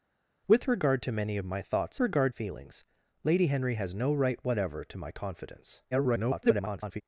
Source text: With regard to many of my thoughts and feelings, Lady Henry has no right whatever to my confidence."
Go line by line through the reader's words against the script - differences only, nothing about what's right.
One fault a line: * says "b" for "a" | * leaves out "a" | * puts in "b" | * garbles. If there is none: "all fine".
* says "regard" for "and"
* garbles